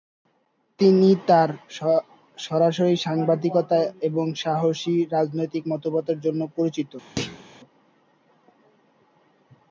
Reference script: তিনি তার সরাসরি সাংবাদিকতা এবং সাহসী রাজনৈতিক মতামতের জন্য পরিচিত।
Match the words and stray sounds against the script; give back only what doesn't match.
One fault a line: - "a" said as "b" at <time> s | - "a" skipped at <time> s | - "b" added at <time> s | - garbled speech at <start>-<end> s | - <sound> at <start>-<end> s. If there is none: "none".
- thud at 7.2-7.4 s